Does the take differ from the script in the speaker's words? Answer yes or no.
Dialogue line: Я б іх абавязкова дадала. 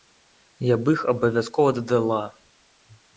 no